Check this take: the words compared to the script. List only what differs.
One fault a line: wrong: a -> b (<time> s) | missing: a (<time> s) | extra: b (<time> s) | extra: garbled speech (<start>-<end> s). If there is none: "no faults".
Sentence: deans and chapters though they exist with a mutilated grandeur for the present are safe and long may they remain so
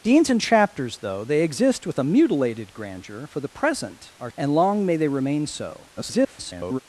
missing: safe (4.3 s)
extra: garbled speech (6.0-6.8 s)